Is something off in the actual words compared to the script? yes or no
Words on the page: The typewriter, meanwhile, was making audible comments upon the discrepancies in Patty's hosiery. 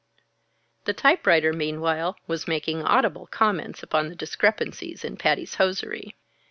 no